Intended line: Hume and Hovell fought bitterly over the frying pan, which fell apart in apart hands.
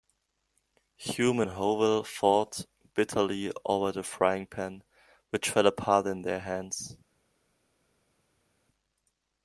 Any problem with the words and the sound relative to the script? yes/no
yes